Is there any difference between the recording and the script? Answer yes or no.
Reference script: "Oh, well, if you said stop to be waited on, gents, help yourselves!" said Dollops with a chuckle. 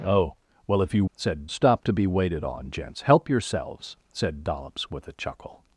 no